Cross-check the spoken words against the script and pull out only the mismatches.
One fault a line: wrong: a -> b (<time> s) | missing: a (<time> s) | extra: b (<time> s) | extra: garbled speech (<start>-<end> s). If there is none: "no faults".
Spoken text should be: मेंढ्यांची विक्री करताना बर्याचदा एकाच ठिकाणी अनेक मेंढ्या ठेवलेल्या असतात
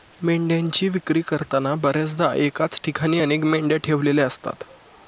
no faults